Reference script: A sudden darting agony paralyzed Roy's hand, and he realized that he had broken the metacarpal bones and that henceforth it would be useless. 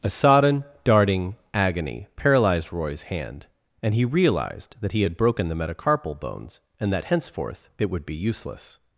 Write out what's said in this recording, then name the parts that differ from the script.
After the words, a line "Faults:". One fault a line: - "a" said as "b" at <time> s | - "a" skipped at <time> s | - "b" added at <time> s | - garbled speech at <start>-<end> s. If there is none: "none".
A sodden darting agony paralyzed Roy's hand, and he realized that he had broken the metacarpal bones and that henceforth it would be useless.
Faults:
- "sudden" said as "sodden" at 0.1 s